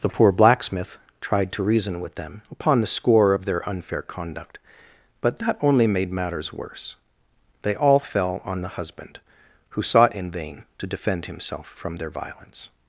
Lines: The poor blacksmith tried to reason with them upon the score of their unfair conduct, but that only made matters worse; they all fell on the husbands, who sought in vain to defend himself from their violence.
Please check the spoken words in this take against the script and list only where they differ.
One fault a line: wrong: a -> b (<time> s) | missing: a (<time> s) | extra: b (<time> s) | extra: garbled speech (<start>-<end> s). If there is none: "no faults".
wrong: husbands -> husband (8.7 s)